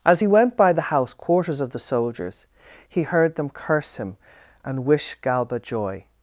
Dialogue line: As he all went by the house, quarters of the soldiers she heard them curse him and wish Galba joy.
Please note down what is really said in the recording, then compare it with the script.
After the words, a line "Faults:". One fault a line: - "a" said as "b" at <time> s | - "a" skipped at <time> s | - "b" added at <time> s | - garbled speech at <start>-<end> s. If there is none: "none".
As he went by the house, quarters of the soldiers he heard them curse him and wish Galba joy.
Faults:
- "all" skipped at 0.3 s
- "she" said as "he" at 2.9 s